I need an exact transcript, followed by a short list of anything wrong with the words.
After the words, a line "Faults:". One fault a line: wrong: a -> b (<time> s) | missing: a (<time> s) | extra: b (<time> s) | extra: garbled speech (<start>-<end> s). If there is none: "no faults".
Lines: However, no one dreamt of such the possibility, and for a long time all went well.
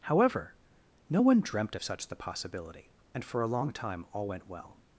However, no one dreamt of such the possibility, and for a long time all went well.
Faults:
no faults